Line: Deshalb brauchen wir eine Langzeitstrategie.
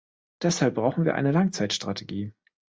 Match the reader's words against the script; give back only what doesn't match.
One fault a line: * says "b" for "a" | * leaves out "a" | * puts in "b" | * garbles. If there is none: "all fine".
all fine